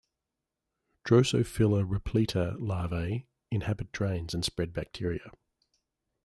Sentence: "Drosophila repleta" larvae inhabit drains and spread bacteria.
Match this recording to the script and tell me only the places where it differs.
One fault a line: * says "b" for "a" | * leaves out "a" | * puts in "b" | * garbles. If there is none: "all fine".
all fine